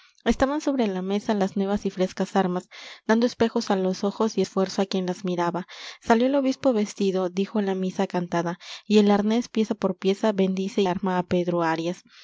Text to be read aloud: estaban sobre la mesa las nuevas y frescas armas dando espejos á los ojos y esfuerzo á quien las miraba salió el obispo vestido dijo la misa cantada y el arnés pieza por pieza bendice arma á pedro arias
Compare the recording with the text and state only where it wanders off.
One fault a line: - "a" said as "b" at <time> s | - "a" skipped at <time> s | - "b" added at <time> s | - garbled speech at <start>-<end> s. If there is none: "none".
none